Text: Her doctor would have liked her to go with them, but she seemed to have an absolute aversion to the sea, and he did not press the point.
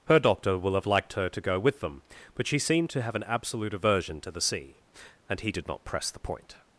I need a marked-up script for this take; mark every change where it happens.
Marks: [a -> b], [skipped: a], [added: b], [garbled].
Her doctor [would -> will] have liked her to go with them, but she seemed to have an absolute aversion to the sea, and he did not press the point.